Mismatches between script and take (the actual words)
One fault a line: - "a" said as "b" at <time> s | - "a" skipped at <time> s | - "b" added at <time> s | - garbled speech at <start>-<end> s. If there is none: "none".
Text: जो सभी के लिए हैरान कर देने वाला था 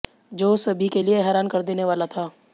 none